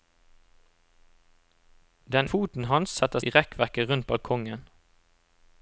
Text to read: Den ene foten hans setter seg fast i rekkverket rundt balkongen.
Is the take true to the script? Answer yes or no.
no